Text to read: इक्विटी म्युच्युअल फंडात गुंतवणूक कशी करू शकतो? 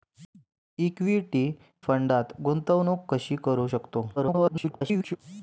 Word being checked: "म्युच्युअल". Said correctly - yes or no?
no